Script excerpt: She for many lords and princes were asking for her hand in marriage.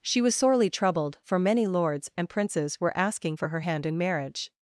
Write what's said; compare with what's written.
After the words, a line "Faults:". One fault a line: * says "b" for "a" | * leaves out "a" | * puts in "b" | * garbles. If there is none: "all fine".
She was sorely troubled, for many lords and princes were asking for her hand in marriage.
Faults:
* puts in "was sorely troubled"